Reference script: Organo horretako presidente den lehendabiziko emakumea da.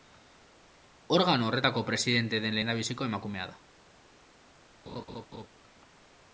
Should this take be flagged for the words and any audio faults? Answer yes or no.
yes